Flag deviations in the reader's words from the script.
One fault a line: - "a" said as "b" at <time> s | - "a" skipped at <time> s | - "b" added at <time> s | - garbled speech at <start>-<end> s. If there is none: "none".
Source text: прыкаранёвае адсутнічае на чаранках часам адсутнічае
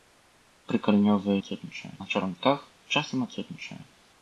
none